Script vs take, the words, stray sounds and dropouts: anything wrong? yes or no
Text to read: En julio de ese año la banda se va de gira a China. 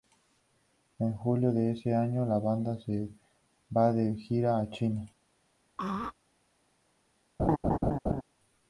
yes